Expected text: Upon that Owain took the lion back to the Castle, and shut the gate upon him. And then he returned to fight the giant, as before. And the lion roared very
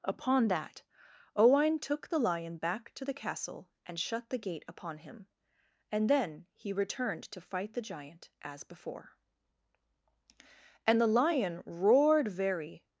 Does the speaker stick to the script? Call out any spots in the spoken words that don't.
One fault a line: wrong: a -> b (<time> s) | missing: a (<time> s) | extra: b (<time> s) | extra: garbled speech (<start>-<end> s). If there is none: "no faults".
no faults